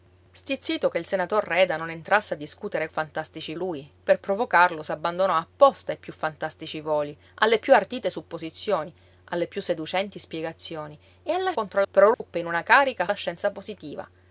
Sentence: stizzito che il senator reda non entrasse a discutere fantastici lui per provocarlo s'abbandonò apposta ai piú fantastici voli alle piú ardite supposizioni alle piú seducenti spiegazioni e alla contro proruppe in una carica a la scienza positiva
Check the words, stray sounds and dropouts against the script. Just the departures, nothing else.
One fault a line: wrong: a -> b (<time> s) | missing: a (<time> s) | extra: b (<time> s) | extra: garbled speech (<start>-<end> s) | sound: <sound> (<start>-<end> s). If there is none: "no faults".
sound: dropout (12.1-12.2 s)